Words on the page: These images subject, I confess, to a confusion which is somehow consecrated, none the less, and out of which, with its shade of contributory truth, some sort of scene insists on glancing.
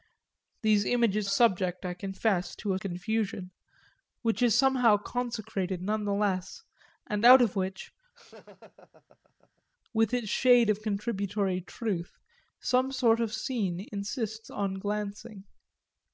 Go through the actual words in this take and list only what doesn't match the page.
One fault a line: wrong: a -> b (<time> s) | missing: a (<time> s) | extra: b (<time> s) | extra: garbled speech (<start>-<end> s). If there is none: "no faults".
no faults